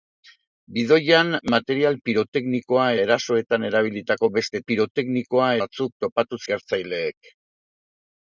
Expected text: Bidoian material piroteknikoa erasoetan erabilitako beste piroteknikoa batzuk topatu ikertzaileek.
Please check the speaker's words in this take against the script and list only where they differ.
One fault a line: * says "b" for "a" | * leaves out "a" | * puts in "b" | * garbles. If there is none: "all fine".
all fine